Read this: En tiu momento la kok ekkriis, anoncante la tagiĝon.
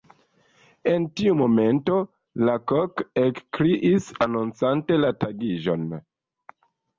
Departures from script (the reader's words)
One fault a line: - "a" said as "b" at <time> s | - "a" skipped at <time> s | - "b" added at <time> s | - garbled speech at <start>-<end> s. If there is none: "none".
none